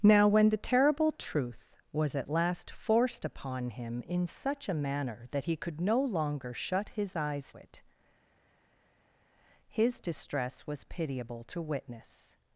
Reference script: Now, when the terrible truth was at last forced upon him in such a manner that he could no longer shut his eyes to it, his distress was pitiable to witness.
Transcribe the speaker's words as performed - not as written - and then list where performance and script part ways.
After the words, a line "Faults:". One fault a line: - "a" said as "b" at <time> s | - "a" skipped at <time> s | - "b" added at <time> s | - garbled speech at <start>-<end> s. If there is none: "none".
Now, when the terrible truth was at last forced upon him in such a manner that he could no longer shut his eyes it, his distress was pitiable to witness.
Faults:
- "to" skipped at 7.5 s